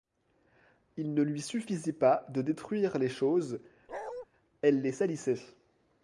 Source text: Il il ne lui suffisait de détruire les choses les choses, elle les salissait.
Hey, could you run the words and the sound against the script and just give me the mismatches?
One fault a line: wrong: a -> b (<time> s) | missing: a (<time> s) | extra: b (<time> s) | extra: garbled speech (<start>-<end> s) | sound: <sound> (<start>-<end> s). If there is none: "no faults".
missing: il (1.1 s)
extra: pas (1.9 s)
missing: les choses (3.6 s)
sound: bark (3.9-4.3 s)